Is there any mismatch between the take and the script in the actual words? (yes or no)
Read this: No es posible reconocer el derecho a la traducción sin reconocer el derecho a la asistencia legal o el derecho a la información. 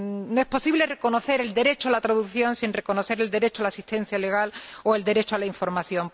no